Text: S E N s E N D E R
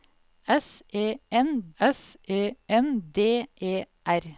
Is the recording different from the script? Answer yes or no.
no